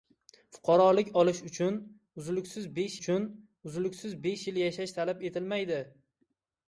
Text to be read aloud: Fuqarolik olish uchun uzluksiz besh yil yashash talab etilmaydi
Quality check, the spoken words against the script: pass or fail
fail